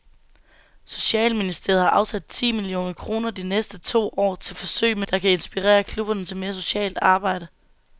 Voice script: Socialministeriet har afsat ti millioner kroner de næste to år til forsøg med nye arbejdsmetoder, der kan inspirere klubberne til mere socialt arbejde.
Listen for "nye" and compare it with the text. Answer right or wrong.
wrong